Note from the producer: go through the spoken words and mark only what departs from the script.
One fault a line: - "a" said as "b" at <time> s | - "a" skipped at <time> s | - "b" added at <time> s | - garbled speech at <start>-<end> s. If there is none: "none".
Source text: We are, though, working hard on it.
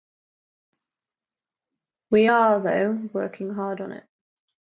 none